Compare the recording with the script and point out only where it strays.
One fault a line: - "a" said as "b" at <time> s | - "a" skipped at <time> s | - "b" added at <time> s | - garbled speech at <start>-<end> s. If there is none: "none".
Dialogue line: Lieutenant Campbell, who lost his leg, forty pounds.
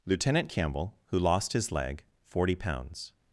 none